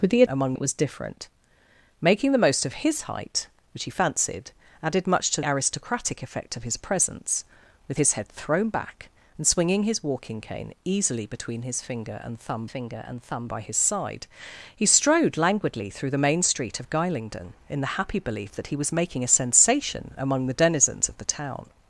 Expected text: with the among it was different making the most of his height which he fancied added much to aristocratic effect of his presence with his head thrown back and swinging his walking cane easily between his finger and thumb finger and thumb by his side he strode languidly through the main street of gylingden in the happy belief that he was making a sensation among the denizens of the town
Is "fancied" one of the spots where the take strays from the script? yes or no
no